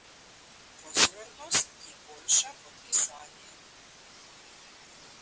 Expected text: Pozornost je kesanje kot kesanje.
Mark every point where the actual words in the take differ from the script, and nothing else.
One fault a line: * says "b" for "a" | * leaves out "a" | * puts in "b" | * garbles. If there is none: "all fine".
* says "boljša" for "kesanje"